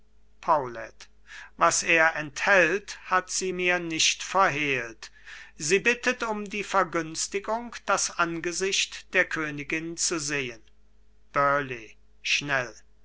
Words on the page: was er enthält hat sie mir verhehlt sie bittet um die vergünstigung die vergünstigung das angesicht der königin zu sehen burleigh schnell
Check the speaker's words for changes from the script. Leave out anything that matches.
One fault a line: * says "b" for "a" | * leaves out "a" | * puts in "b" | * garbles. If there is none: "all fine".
* puts in "nicht"
* leaves out "die vergünstigung"